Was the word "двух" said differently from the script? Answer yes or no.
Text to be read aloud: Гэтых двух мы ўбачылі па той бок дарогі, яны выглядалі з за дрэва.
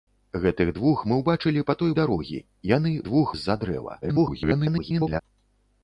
no